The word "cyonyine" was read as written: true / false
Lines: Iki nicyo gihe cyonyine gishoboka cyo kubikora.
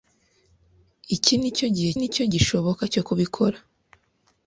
false